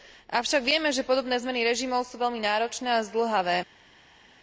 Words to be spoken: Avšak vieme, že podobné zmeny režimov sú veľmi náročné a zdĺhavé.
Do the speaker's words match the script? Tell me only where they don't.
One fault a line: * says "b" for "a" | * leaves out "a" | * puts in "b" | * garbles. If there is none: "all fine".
all fine